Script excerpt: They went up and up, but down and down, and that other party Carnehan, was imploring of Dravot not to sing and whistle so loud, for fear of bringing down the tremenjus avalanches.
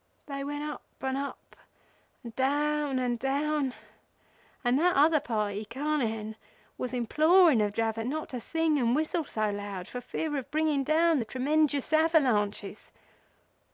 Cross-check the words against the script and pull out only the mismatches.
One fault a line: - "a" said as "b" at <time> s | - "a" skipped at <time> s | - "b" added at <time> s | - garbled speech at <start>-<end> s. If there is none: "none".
- "but" said as "and" at 2.2 s